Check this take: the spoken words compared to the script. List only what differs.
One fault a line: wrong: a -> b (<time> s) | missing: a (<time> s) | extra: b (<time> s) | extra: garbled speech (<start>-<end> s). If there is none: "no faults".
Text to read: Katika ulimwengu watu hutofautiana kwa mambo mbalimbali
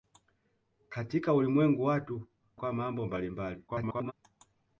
missing: hutofautiana (2.3 s)
extra: garbled speech (3.7-4.1 s)